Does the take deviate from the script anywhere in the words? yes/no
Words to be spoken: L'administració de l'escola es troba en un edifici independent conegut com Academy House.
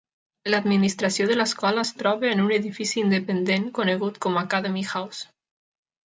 no